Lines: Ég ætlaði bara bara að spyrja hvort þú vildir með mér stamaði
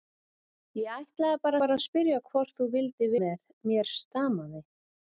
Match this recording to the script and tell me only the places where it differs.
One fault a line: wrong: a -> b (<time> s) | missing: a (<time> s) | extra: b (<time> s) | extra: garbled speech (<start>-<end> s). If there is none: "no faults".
no faults